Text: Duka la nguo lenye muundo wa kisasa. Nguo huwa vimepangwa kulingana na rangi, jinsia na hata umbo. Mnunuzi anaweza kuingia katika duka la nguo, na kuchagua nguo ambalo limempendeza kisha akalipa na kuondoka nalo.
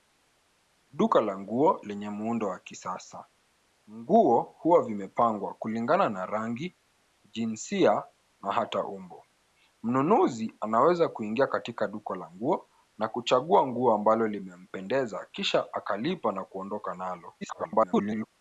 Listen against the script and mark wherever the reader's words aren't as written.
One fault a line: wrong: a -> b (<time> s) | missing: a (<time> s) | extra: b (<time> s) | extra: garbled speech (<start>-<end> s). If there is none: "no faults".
extra: garbled speech (17.4-18.3 s)